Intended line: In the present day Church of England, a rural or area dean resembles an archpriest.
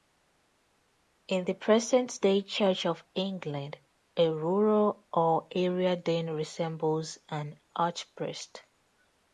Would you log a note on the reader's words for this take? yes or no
no